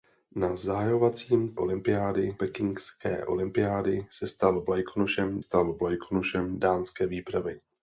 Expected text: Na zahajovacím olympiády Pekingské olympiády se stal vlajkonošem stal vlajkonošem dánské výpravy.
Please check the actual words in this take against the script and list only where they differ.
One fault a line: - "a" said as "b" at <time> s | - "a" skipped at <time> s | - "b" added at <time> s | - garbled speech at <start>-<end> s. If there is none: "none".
none